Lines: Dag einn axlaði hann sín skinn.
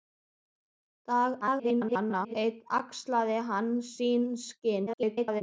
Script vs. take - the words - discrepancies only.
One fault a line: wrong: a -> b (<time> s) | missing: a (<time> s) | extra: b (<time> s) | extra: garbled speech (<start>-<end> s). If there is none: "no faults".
extra: garbled speech (1.4-2.4 s)
extra: garbled speech (4.9-5.4 s)